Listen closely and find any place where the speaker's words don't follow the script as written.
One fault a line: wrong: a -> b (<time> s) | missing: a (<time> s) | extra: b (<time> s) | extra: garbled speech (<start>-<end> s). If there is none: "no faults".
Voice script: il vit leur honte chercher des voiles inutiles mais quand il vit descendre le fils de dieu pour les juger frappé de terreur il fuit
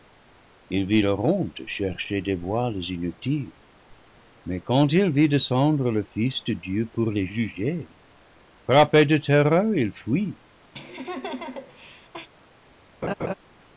no faults